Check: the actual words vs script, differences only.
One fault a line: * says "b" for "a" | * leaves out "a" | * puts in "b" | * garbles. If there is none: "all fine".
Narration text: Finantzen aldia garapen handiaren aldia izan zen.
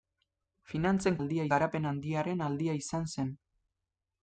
all fine